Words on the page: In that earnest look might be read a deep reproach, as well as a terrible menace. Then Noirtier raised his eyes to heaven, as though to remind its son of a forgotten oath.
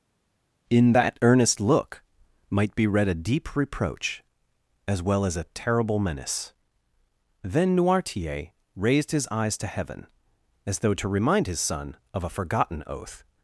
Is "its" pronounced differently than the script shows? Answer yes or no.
yes